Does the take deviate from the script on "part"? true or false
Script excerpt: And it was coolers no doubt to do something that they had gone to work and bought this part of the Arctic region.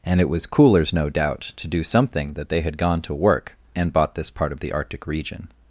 false